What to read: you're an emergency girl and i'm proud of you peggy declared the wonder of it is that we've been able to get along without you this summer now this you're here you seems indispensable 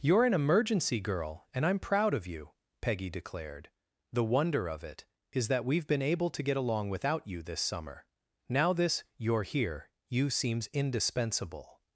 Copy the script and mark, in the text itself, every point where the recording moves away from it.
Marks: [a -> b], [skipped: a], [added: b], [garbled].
you're an emergency girl and i'm proud of you peggy declared the wonder of it is that we've been able to get along without you this summer now this you're here you seems indispensable